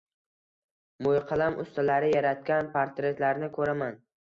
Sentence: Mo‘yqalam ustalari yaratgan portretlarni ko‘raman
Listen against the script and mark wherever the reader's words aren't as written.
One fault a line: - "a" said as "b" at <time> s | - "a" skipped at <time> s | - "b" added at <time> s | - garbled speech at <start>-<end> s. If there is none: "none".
none